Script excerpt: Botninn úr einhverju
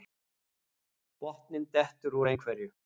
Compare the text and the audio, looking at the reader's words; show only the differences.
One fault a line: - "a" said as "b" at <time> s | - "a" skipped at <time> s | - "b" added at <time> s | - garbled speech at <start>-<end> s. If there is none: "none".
- "dettur" added at 1.8 s